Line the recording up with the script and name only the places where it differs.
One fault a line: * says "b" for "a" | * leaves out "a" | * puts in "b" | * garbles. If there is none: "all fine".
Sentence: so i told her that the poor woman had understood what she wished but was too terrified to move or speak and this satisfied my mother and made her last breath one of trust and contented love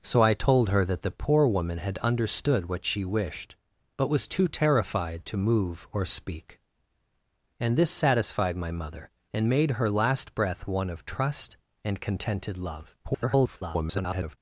* garbles